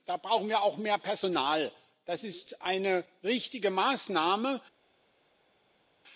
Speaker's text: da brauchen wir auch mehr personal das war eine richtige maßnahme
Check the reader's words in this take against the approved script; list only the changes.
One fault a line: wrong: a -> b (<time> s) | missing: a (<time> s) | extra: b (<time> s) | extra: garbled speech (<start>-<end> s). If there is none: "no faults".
wrong: war -> ist (2.2 s)